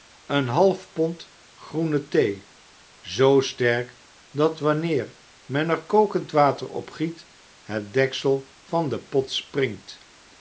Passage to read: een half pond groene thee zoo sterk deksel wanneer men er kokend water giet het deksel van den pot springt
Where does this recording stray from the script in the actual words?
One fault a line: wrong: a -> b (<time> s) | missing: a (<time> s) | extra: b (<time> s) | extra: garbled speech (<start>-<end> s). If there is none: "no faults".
wrong: deksel -> dat (4.3 s)
extra: op (6.7 s)